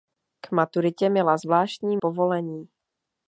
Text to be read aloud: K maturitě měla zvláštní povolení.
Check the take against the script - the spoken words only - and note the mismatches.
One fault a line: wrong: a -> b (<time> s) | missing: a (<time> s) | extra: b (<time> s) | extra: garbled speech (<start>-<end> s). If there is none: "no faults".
no faults